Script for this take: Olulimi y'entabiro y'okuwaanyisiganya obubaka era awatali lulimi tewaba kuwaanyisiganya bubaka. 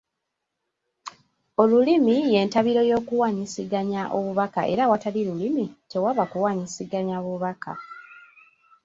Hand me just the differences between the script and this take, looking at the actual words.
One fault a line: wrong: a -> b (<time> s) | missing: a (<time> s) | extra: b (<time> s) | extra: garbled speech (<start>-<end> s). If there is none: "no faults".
no faults